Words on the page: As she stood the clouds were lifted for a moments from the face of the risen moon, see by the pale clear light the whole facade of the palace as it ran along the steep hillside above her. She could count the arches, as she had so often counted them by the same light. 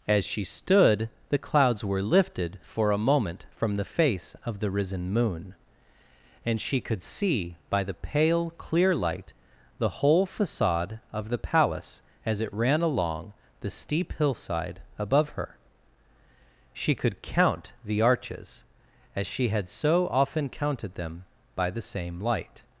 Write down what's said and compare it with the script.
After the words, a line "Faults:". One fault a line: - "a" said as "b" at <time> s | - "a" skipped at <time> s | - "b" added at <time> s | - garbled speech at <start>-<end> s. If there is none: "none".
As she stood the clouds were lifted for a moment from the face of the risen moon, and she could see by the pale clear light the whole facade of the palace as it ran along the steep hillside above her. She could count the arches, as she had so often counted them by the same light.
Faults:
- "moments" said as "moment" at 3.0 s
- "and she could" added at 6.5 s